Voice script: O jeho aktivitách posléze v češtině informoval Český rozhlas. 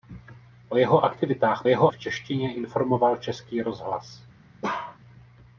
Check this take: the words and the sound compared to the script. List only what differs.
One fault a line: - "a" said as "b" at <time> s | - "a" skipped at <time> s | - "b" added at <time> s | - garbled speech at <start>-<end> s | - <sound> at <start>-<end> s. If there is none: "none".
- "posléze" said as "jeho" at 1.7 s
- bark at 4.6-5.0 s